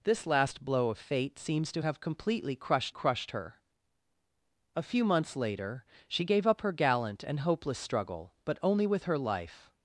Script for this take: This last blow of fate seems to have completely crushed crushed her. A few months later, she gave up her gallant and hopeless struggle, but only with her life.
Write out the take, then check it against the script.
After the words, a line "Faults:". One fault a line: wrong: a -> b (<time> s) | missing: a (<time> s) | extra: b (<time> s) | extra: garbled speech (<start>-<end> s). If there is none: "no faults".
This last blow of fate seems to have completely crushed crushed her. A few months later, she gave up her gallant and hopeless struggle, but only with her life.
Faults:
no faults